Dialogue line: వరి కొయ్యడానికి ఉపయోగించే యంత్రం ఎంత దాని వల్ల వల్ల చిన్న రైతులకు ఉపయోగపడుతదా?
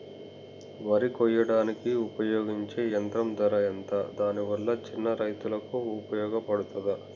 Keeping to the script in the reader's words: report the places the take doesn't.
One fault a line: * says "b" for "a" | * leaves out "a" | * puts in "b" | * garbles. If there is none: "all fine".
* puts in "ధర"
* leaves out "వల్ల"